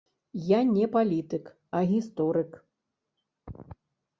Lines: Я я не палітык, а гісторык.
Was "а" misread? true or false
false